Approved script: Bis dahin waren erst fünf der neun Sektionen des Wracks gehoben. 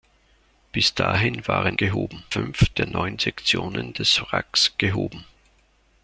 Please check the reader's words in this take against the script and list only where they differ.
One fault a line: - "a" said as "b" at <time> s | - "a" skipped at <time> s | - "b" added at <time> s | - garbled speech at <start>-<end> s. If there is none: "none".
- "erst" said as "gehoben" at 1.8 s